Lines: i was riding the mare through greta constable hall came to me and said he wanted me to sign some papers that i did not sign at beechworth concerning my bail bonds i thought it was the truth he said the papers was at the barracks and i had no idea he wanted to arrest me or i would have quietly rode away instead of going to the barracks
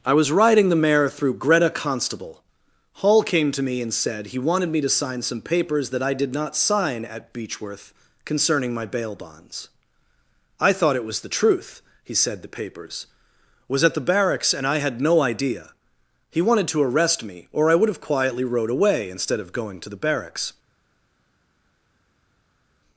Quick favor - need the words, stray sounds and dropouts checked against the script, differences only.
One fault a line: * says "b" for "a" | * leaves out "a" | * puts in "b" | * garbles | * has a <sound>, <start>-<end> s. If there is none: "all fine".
all fine